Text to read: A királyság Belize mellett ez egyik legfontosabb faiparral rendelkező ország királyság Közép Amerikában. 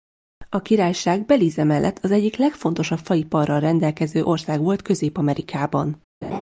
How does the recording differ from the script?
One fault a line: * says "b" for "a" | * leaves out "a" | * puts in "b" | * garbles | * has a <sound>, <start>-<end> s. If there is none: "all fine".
* says "az" for "ez"
* says "volt" for "királyság"
* has a laugh, 6.2-6.4 s